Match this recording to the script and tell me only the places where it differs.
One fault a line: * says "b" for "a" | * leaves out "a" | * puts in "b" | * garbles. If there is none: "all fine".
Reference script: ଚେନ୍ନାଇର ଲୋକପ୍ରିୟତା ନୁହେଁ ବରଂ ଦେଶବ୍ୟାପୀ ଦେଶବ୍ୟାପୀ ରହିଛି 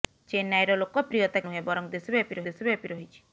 all fine